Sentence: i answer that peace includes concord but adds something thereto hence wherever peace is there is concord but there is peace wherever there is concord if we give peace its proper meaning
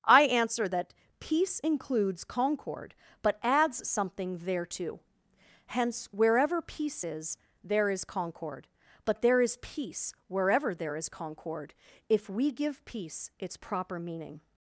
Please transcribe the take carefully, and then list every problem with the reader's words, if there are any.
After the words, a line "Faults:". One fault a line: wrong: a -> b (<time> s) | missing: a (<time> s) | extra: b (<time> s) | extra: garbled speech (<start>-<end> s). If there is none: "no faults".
i answer that peace includes concord but adds something thereto hence wherever peace is there is concord but there is peace wherever there is concord if we give peace its proper meaning
Faults:
no faults